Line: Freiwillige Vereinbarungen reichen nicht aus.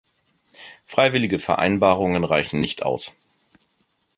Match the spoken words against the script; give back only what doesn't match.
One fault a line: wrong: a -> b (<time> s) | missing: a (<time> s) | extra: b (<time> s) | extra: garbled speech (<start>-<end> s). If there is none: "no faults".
no faults